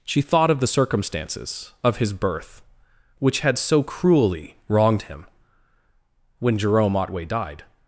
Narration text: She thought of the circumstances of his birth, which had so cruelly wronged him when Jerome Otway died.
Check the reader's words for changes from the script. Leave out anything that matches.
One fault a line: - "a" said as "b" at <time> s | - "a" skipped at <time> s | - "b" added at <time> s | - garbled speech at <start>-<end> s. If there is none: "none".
none